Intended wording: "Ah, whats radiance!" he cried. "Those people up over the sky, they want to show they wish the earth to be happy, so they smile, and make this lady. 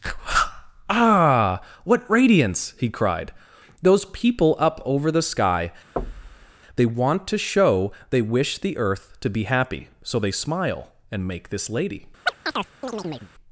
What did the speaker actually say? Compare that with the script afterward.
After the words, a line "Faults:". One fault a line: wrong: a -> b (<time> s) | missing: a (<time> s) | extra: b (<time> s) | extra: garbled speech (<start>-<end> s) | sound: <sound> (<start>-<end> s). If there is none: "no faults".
"Ah, what radiance!" he cried. "Those people up over the sky, they want to show they wish the earth to be happy, so they smile, and make this lady.
Faults:
wrong: whats -> what (1.8 s)
sound: thud (6.0-6.5 s)
sound: chirp (12.3-13.3 s)